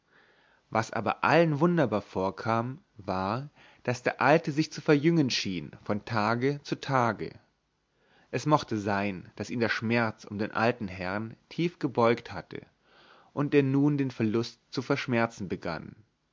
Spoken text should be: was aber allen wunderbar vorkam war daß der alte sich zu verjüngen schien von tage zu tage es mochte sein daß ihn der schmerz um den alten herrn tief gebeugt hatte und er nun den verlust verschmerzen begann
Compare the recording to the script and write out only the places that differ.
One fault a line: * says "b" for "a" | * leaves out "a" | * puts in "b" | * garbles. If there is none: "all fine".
* puts in "zu"